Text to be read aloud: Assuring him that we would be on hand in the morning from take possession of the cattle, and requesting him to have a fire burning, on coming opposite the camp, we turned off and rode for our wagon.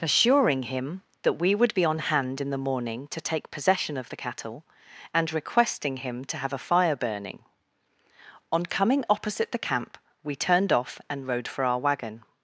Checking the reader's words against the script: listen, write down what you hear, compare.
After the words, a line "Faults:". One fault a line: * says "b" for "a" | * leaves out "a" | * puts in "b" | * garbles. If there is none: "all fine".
Assuring him that we would be on hand in the morning to take possession of the cattle, and requesting him to have a fire burning, on coming opposite the camp, we turned off and rode for our wagon.
Faults:
* says "to" for "from"